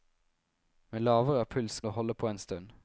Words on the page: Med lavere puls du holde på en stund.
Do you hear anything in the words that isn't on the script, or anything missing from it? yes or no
no